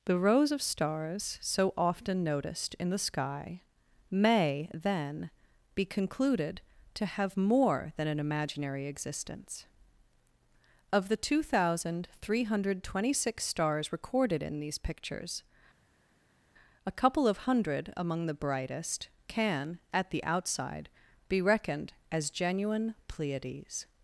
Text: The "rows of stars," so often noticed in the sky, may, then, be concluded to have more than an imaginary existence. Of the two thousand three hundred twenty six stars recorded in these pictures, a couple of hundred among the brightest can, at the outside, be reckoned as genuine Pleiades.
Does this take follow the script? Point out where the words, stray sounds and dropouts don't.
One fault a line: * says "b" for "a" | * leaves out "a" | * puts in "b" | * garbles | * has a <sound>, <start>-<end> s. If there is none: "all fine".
all fine